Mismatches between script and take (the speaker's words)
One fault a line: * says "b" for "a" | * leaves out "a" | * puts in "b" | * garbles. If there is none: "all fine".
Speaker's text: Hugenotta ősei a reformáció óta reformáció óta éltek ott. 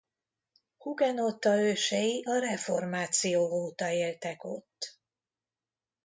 * leaves out "reformáció óta"